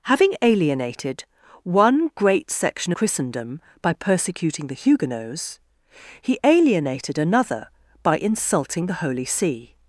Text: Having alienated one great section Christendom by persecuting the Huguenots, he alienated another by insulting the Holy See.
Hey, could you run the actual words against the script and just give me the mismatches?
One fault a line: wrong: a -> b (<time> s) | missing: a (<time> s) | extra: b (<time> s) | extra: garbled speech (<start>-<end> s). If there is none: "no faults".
no faults